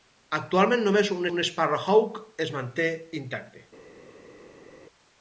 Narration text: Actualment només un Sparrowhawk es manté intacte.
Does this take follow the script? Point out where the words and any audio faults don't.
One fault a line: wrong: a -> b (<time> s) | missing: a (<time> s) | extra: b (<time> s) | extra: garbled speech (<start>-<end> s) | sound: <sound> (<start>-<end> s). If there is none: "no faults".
extra: un (1.3 s)